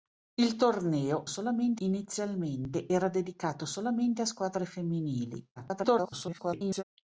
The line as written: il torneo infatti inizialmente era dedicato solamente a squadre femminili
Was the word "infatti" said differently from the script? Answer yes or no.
yes